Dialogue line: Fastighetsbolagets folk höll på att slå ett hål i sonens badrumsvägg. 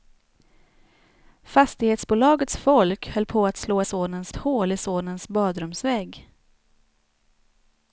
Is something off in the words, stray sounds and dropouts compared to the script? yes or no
yes